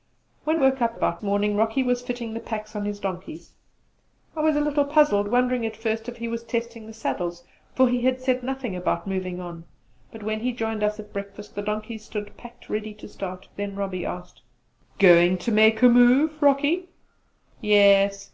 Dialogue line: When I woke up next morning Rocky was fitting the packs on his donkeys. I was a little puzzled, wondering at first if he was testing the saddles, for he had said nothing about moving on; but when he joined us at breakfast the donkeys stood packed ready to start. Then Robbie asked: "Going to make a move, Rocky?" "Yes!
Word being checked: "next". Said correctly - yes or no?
no